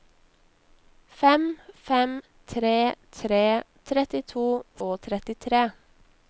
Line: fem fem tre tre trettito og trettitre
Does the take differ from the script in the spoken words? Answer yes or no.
no